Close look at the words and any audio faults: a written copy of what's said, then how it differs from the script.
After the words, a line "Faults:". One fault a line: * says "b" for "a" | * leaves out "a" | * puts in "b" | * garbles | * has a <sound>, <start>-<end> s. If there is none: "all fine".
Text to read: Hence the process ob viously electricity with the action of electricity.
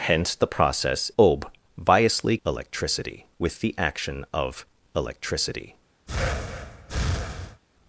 Hence the process ob viously electricity with the action of electricity.
Faults:
* has a breath, 6.1-7.6 s